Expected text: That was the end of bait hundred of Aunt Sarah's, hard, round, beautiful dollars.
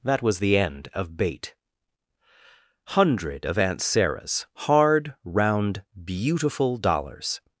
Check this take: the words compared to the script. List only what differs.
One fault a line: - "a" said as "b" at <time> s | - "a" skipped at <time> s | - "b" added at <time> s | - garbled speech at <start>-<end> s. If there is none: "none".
none